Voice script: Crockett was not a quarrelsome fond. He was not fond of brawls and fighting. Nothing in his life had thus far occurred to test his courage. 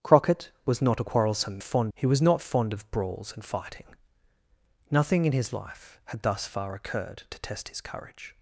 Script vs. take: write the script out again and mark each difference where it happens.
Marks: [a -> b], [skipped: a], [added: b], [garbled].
Crockett was not a quarrelsome fond. He was not fond of brawls and fighting. Nothing in his life had thus far occurred to test his courage.